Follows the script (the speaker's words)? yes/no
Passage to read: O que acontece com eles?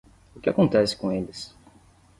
yes